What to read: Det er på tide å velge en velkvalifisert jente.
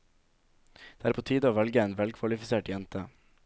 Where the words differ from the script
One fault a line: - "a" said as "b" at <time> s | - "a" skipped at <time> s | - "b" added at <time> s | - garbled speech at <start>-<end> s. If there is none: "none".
none